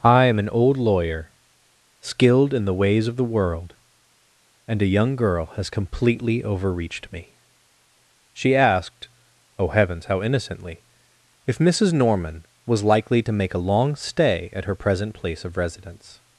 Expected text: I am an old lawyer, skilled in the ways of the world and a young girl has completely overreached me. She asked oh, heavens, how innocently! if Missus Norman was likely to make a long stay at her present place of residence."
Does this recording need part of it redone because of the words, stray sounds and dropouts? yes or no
no